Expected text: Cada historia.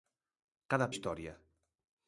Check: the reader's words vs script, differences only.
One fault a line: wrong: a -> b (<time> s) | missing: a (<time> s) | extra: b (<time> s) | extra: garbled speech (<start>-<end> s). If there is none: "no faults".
no faults